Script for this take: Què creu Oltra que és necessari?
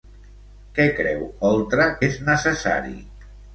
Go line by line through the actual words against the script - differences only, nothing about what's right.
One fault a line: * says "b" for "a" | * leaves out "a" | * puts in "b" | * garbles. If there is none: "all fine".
* leaves out "que"